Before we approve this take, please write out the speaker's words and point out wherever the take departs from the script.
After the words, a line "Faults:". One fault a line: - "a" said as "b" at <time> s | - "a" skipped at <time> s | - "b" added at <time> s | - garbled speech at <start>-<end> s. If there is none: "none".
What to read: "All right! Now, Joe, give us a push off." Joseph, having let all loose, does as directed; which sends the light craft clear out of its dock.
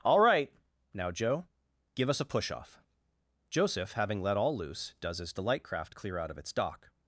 "All right! Now, Joe, give us a push off." Joseph, having let all loose, does as the light craft clear out of its dock.
Faults:
- "directed which sends" skipped at 5.3 s